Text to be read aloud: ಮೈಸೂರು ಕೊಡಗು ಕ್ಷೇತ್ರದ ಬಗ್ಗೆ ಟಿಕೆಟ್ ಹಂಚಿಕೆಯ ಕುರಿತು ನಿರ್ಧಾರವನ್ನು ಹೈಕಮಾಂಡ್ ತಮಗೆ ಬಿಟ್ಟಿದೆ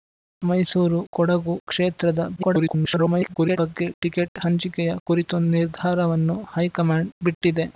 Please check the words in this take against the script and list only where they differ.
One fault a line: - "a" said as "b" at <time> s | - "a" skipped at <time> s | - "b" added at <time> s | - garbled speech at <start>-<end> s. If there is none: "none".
- garbled speech at 2.4-3.6 s
- "ತಮಗೆ" skipped at 7.1 s